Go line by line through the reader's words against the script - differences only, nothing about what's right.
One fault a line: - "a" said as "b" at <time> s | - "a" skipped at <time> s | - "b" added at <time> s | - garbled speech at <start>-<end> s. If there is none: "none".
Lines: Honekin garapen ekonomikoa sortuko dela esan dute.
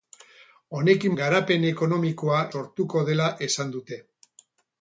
none